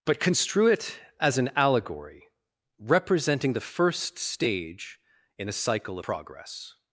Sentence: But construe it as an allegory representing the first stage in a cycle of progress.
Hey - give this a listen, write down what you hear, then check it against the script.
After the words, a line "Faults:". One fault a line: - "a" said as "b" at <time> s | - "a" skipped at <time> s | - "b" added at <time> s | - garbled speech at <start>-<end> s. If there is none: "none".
But construe it as an allegory representing the first stage in a cycle progress.
Faults:
- "of" skipped at 6.0 s